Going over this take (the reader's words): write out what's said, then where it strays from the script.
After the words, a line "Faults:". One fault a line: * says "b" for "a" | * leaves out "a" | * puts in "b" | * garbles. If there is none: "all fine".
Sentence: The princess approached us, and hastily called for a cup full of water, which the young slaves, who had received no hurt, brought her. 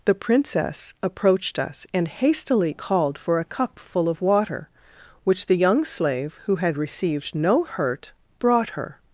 The princess approached us, and hastily called for a cup full of water, which the young slave, who had received no hurt, brought her.
Faults:
* says "slave" for "slaves"